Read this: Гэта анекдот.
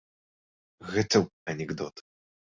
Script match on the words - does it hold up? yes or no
yes